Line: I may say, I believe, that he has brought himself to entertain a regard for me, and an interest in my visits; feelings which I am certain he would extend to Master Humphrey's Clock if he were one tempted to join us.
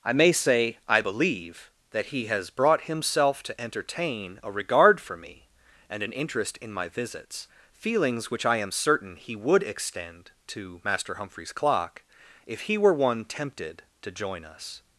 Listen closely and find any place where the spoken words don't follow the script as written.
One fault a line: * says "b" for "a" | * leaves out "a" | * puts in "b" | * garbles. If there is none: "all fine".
all fine